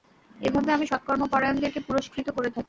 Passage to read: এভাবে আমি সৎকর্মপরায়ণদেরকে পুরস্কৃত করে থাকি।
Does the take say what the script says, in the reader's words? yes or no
yes